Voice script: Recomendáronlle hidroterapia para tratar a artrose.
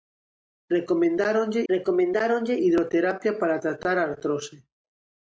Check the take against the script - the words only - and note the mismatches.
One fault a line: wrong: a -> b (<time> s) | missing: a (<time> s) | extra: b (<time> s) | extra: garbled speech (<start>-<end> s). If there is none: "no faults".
extra: recomendáronlle (1.7 s)